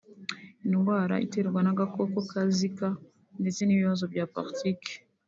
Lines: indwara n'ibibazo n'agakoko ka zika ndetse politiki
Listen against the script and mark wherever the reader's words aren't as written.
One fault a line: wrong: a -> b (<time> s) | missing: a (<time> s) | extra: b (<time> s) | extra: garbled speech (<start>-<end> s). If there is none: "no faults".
wrong: n'ibibazo -> iterwa (1.2 s)
extra: n'ibibazo bya (3.6 s)